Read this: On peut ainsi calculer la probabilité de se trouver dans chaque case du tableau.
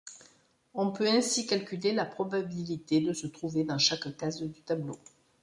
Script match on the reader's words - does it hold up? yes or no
yes